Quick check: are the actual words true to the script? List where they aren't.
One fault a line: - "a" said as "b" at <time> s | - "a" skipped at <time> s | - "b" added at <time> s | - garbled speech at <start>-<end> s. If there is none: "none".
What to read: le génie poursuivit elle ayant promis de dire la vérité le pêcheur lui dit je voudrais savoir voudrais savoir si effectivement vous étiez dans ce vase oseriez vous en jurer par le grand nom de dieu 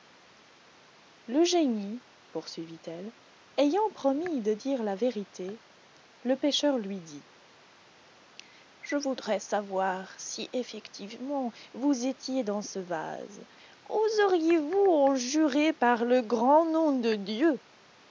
- "voudrais savoir" skipped at 10.1 s